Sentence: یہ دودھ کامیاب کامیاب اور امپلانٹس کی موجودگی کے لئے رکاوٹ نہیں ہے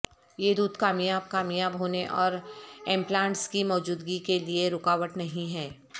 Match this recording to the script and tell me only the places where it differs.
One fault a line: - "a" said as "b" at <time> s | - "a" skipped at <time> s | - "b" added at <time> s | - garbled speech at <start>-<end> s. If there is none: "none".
- "ہونے" added at 1.8 s